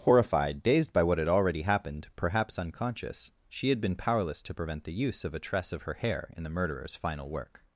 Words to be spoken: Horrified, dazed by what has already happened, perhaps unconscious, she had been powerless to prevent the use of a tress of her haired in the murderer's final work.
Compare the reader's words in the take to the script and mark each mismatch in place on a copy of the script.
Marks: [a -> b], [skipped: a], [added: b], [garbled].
Horrified, dazed by what [has -> had] already happened, perhaps unconscious, she had been powerless to prevent the use of a tress of her [haired -> hair] in the murderer's final work.